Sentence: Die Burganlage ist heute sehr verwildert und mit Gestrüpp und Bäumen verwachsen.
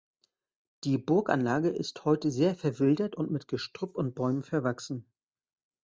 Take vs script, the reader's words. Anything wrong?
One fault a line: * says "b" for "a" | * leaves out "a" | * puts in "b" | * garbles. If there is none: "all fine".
all fine